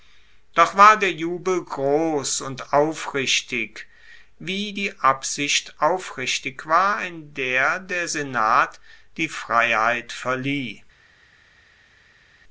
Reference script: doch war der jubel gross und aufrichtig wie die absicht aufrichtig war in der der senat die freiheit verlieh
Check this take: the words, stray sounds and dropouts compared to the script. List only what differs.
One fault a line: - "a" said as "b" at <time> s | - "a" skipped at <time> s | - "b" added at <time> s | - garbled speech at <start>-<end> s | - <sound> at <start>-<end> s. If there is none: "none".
none